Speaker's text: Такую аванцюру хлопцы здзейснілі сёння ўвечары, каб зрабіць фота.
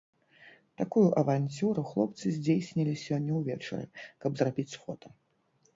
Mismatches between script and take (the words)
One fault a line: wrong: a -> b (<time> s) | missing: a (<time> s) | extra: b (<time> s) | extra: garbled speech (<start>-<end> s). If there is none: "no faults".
no faults